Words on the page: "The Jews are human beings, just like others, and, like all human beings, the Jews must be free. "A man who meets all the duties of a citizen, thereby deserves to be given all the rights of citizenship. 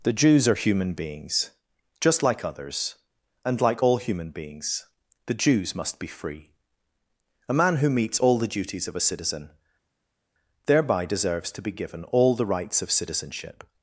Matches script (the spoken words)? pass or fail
pass